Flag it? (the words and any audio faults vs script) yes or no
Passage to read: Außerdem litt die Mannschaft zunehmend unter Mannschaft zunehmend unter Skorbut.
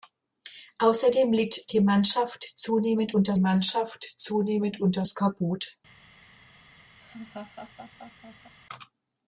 yes